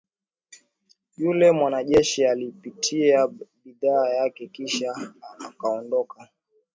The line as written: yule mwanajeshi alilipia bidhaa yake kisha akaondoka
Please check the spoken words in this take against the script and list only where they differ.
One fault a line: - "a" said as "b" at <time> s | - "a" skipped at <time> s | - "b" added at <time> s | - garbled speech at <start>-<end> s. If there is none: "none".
none